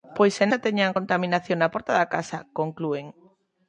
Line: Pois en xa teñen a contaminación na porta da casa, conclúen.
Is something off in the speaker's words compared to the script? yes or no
no